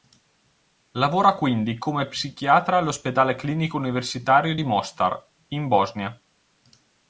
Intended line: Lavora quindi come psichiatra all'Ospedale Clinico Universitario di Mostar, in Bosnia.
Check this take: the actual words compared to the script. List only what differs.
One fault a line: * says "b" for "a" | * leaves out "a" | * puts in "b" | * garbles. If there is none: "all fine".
all fine